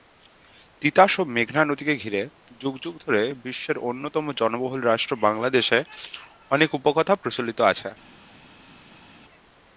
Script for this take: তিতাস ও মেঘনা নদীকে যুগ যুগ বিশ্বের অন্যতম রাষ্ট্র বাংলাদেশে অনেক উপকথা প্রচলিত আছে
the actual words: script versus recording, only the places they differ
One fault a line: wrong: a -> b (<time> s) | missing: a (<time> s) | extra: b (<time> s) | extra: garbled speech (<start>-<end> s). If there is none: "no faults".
extra: ঘিরে (1.9 s)
extra: ধরে (3.0 s)
extra: জনবহুল (4.4 s)